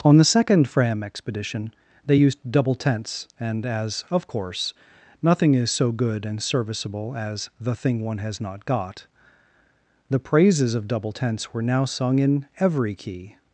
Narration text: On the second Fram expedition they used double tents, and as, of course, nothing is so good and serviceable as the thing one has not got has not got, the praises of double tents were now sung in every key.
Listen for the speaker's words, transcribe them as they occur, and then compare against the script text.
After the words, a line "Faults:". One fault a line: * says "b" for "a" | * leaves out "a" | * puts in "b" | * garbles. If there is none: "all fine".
On the second Fram expedition they used double tents, and as, of course, nothing is so good and serviceable as the thing one has not got, the praises of double tents were now sung in every key.
Faults:
* leaves out "has not got"